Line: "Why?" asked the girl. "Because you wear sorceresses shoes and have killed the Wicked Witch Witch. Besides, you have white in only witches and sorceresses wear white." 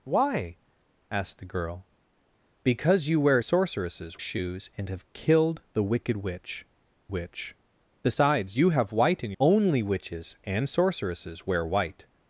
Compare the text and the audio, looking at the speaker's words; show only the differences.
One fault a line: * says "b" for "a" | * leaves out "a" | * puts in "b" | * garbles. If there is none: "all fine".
all fine